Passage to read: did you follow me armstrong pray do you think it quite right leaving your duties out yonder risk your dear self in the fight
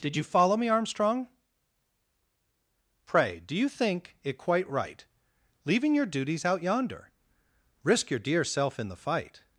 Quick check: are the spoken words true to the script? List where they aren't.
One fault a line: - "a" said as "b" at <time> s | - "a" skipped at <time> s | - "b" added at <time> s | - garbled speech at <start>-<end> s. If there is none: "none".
none